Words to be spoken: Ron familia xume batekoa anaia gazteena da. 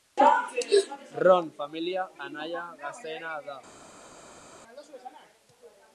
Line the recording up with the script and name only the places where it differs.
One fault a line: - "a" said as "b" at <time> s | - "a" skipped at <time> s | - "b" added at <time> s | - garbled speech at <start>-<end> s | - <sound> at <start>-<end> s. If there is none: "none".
- "xume batekoa" skipped at 2.0 s